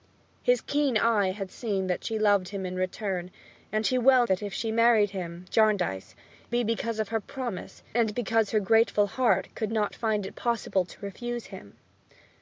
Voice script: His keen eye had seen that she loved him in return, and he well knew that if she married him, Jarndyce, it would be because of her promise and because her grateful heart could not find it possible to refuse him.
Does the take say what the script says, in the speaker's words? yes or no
no